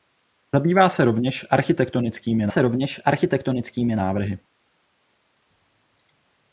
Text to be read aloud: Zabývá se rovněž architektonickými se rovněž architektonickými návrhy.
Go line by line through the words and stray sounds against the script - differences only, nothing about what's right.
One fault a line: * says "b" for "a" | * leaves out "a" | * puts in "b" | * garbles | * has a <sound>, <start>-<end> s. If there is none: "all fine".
all fine